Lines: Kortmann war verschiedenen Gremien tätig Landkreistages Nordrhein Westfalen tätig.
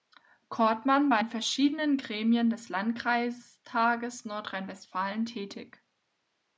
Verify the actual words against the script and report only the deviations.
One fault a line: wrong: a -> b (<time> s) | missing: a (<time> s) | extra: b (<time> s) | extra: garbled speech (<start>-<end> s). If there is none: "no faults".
extra: in (1.2 s)
wrong: tätig -> des (2.5 s)